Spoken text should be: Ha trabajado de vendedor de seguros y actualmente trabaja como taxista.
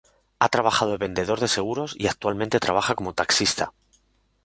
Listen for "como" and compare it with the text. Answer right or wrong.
right